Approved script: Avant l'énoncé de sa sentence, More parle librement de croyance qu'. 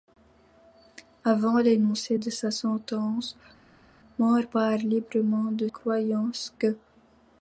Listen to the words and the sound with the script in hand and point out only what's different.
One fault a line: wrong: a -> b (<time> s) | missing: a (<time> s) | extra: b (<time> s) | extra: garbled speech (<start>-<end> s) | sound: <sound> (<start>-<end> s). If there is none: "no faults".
no faults